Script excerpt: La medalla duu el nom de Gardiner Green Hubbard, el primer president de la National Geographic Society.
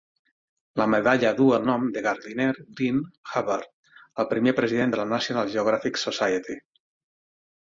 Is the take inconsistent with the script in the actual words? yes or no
no